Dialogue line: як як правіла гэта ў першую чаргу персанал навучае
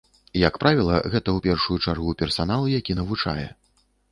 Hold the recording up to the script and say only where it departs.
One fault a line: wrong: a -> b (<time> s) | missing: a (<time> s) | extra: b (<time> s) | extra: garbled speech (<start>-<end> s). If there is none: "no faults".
missing: як (0.6 s)
extra: які (2.8 s)